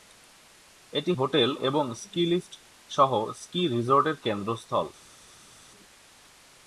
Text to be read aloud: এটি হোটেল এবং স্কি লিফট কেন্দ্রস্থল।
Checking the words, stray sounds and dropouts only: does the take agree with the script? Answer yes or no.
no